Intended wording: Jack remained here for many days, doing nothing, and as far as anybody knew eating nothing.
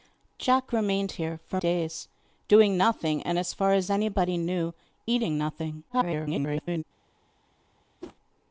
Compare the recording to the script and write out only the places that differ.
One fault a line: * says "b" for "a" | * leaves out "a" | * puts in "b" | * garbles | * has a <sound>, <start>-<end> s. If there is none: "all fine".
* leaves out "many"
* garbles
* has a whoosh, 8.0-8.2 s